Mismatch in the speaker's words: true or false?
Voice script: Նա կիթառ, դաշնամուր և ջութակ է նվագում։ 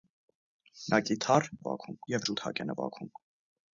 true